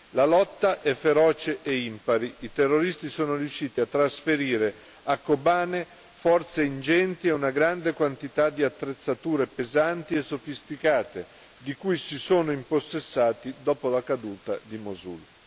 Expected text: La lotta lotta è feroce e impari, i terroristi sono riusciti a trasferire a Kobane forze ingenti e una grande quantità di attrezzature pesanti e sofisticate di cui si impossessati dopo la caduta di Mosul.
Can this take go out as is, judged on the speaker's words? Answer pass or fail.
fail